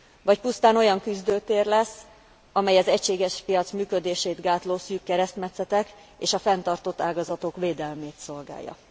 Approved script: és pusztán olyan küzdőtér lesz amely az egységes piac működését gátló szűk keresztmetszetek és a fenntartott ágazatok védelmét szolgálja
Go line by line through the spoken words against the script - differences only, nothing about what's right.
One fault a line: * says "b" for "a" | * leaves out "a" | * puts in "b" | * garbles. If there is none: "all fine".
* says "vagy" for "és"